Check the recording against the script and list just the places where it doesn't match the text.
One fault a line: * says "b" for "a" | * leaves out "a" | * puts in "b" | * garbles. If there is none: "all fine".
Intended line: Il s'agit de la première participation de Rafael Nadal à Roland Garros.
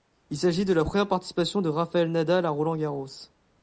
all fine